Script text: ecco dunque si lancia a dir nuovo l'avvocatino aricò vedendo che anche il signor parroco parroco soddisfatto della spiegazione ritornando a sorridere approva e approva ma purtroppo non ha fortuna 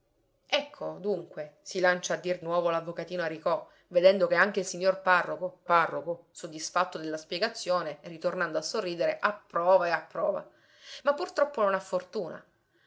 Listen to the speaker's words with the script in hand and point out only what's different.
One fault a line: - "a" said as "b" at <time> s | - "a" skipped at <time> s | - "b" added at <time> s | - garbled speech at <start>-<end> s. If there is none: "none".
none